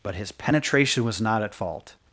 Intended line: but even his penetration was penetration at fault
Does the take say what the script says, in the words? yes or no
no